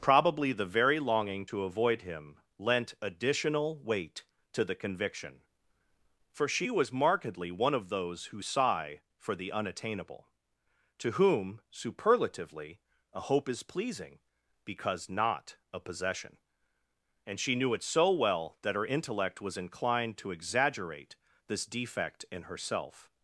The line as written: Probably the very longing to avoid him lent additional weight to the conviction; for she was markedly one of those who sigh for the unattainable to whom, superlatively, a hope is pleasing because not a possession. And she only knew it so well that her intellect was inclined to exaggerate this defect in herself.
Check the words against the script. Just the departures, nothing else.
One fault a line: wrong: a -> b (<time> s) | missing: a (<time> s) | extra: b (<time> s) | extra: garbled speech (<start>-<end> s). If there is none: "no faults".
missing: only (17.5 s)